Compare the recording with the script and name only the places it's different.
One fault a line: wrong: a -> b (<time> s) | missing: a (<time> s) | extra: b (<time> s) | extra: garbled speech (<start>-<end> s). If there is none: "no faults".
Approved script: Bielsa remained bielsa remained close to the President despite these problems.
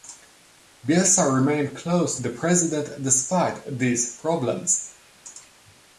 missing: bielsa remained (1.8 s)